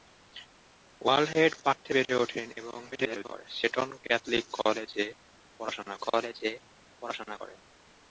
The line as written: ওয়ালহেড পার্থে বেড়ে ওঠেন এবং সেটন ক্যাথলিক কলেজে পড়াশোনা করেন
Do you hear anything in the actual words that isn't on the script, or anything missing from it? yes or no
yes